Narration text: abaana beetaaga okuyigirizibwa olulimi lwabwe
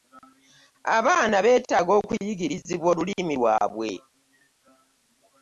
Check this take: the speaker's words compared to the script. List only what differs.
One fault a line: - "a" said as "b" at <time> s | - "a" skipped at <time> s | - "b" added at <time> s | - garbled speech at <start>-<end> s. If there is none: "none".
none